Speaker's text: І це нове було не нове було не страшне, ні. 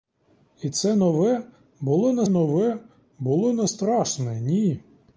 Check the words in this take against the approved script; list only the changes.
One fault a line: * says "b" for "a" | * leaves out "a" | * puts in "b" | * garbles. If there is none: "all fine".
all fine